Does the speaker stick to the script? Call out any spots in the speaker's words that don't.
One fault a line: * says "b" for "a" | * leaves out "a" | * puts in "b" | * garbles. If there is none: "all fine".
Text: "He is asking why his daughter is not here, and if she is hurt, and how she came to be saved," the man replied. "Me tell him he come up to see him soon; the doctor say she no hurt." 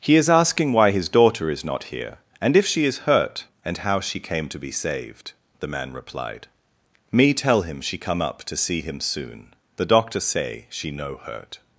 * says "she" for "he"